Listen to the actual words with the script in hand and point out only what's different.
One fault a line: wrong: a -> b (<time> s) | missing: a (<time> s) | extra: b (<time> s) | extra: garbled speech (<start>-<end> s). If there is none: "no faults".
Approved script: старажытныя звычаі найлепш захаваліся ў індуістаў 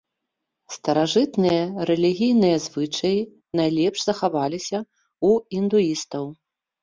extra: рэлігійныя (1.9 s)